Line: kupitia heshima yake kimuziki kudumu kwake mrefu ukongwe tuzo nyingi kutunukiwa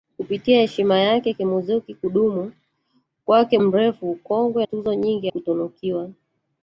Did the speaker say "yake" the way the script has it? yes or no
yes